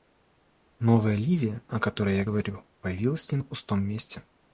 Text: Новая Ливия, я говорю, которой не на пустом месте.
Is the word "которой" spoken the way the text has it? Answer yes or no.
no